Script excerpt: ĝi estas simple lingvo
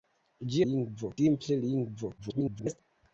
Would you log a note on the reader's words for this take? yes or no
yes